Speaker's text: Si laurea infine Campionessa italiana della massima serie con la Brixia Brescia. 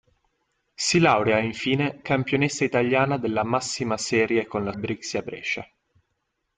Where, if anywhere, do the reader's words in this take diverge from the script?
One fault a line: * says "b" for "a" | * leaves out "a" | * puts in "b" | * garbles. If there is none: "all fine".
all fine